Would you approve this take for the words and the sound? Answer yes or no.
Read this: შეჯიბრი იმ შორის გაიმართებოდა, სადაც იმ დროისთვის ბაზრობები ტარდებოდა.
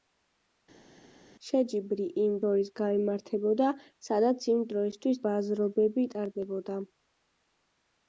yes